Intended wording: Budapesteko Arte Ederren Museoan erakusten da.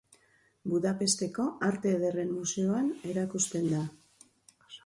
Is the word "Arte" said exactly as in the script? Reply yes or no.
yes